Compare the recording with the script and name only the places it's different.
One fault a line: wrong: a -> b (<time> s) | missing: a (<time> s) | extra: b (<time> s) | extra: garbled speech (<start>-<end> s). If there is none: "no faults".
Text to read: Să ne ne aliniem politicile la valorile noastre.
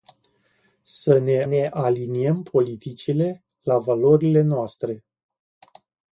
no faults